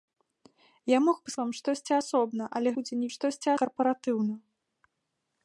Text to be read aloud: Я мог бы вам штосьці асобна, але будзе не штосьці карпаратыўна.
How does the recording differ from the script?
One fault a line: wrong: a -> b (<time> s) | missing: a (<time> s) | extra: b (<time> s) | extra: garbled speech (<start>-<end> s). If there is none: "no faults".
no faults